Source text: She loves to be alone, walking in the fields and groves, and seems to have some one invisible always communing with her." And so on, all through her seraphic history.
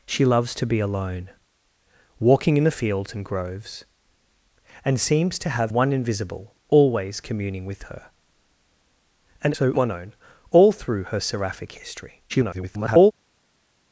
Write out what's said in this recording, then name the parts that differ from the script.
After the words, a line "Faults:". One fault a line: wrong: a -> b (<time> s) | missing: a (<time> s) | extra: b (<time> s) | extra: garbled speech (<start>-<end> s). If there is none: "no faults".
She loves to be alone, walking in the fields and groves, and seems to have one invisible always communing with her." And so on, all through her seraphic history. [garbled]
Faults:
missing: some (5.7 s)
extra: garbled speech (12.3-13.1 s)